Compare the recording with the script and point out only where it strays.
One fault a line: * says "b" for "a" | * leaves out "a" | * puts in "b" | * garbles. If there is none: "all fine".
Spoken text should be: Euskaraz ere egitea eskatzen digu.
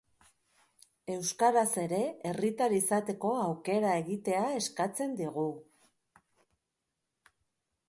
* puts in "herritar izateko aukera"